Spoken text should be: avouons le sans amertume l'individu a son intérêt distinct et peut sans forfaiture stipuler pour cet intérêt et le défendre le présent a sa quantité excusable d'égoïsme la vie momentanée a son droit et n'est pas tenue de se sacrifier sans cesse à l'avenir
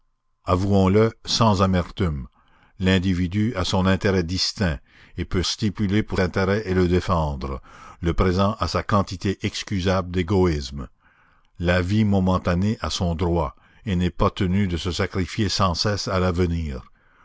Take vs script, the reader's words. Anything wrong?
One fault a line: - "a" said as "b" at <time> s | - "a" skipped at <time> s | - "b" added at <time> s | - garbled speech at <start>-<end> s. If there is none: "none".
- "sans forfaiture" skipped at 5.4 s
- "cet" skipped at 6.2 s